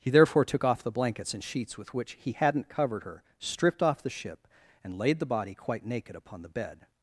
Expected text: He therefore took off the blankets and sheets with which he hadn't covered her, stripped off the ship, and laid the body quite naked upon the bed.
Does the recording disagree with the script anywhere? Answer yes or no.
no